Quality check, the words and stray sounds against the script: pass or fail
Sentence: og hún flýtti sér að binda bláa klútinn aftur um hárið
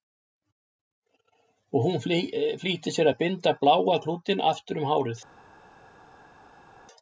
pass